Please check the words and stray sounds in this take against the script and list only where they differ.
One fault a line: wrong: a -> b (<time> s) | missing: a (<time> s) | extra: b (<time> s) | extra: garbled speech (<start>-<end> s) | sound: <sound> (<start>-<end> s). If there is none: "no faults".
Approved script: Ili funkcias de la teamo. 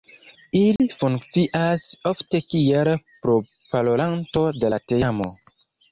sound: dropout (0.8-0.8 s)
extra: ofte kiel proparolanto (2.1 s)